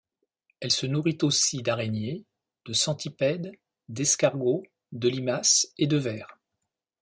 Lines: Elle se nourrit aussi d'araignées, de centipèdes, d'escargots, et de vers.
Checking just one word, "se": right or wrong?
right